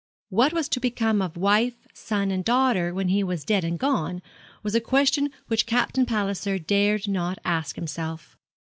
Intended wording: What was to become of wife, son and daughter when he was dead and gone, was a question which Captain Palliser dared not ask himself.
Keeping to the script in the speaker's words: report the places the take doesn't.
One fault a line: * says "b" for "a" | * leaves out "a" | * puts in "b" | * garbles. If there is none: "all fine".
all fine